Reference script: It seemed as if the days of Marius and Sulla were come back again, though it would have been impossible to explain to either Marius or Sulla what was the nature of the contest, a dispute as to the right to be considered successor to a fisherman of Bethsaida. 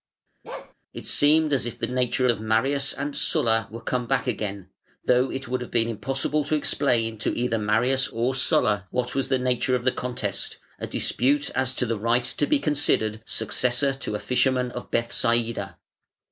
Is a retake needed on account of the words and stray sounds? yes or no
yes